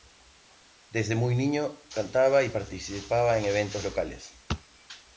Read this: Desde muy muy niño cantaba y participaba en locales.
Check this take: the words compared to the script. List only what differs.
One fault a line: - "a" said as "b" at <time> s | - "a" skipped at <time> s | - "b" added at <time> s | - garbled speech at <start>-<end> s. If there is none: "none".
- "muy" skipped at 1.4 s
- "eventos" added at 3.4 s